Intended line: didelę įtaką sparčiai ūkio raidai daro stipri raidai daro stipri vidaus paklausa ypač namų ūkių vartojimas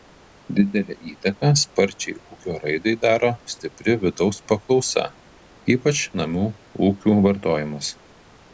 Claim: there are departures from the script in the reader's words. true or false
true